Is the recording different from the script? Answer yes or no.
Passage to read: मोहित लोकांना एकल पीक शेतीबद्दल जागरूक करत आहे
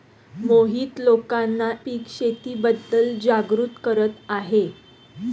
yes